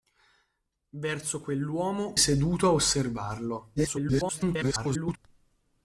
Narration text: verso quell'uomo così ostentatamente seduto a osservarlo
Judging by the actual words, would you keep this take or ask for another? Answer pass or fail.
fail